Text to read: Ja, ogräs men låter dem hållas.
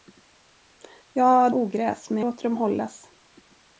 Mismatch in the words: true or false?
false